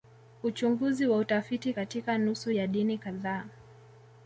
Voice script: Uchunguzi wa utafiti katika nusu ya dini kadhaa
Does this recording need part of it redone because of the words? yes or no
no